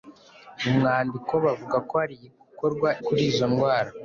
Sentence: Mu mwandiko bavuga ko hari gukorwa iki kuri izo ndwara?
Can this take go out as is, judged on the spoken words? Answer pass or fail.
fail